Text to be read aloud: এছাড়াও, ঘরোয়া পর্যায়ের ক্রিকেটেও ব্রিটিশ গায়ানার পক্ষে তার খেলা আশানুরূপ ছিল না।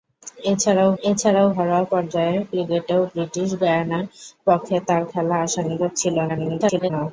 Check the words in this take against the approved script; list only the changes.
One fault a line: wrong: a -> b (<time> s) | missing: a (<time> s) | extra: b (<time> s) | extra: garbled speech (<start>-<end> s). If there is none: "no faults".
extra: এছাড়াও (1.0 s)
extra: garbled speech (6.3-6.9 s)